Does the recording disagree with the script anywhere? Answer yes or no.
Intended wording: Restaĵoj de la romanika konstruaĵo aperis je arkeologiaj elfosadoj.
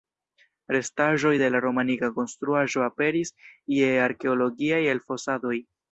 no